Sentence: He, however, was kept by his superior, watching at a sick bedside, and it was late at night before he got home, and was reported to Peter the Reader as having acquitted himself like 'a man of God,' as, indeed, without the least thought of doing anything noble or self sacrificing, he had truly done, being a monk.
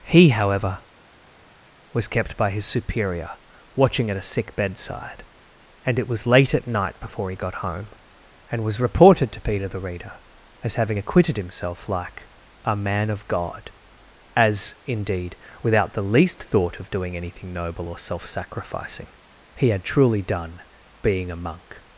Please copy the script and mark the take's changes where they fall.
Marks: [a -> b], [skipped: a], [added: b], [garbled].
He, however, was kept by his superior, watching at a sick bedside, and it was late at night before he got home, and was reported to Peter the Reader as having acquitted himself like 'a man of God,' as, indeed, without the least thought of doing anything noble or self sacrificing, he had truly done, being a monk.